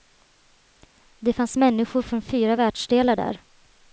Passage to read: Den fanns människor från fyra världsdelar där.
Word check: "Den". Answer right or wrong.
wrong